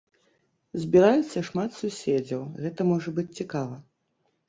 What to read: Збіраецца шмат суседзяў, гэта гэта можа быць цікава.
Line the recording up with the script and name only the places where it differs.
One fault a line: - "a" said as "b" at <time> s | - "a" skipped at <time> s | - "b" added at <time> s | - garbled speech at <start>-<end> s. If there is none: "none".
- "гэта" skipped at 2.9 s